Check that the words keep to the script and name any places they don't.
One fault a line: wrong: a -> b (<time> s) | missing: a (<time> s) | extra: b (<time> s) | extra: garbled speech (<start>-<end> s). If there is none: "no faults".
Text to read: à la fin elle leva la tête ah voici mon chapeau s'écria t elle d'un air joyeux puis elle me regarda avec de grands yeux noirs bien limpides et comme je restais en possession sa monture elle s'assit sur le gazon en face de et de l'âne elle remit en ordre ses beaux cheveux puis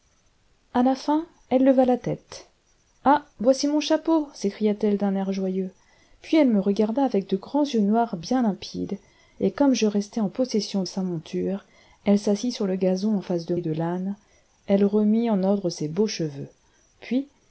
no faults